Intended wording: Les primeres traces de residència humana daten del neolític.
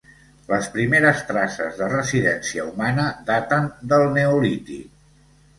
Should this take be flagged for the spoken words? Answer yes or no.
no